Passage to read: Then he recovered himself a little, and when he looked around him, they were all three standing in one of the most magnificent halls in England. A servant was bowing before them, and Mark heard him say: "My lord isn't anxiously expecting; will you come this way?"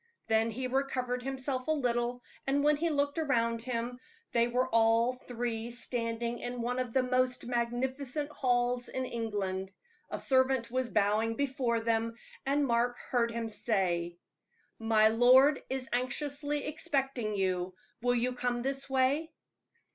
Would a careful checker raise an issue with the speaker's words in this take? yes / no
yes